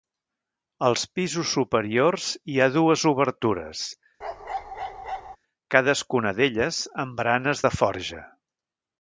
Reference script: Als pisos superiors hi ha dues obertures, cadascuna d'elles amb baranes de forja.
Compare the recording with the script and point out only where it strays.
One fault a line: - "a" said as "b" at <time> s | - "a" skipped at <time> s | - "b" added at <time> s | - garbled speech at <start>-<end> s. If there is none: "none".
none